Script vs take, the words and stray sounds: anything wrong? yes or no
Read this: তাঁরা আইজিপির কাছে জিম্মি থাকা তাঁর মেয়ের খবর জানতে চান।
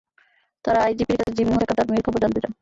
yes